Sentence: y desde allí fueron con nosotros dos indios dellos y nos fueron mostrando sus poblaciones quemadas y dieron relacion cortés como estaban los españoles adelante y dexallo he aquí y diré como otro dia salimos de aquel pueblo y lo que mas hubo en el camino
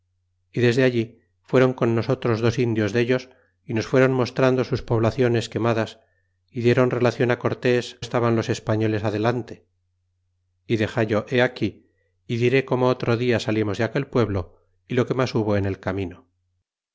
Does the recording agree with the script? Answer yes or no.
no